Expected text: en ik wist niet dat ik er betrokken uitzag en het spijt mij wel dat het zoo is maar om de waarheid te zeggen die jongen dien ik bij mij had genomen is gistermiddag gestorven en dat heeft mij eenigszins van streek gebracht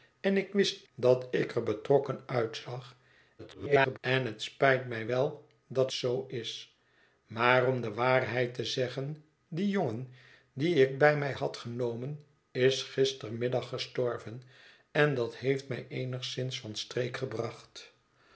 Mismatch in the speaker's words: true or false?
true